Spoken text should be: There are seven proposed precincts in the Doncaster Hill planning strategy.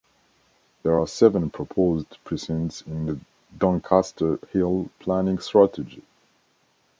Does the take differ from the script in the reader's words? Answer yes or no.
no